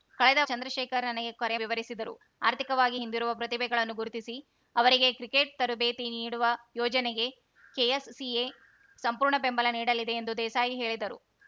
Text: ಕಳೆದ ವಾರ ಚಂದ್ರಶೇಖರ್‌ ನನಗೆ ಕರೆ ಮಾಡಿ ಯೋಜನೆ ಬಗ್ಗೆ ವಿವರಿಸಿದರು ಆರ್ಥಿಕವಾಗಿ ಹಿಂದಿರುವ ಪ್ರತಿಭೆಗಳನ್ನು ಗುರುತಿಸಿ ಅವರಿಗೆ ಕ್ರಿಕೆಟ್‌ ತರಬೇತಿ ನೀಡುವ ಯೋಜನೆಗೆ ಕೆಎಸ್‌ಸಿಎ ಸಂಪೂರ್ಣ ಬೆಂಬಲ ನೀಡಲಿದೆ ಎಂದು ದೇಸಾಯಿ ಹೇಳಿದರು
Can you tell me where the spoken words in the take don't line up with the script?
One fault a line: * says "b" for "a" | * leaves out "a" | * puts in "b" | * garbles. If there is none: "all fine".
* leaves out "ವಾರ"
* leaves out "ಮಾಡಿ ಯೋಜನೆ ಬಗ್ಗೆ"